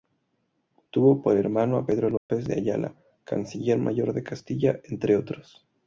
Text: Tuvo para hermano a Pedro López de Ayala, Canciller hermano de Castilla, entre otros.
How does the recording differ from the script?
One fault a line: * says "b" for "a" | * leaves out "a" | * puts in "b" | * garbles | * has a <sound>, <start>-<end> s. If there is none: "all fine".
* says "por" for "para"
* has a dropout, 2.2-2.3 s
* says "mayor" for "hermano"